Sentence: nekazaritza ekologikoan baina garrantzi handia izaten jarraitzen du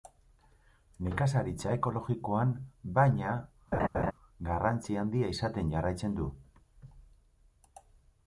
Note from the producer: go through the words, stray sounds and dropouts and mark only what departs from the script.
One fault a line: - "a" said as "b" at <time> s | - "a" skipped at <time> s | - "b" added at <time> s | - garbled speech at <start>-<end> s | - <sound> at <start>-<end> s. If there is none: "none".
- laugh at 3.7-4.1 s